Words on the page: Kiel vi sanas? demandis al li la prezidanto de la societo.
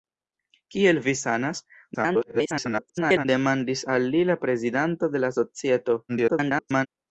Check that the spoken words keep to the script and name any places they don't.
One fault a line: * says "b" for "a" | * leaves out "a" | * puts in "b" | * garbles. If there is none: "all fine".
* garbles
* garbles